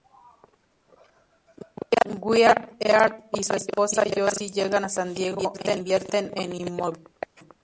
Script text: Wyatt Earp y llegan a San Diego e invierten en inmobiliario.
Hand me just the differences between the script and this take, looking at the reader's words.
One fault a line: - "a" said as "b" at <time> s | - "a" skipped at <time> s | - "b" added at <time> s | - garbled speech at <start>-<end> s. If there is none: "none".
- "su esposa Josie" added at 3.4 s